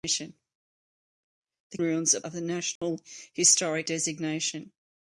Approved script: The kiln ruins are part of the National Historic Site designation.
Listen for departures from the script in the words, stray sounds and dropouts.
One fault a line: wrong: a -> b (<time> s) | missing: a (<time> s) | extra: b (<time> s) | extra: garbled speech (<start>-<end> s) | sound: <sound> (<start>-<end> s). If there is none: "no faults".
missing: kiln (1.8 s)
missing: part (2.2 s)
sound: dropout (2.8-2.8 s)
missing: Site (3.9 s)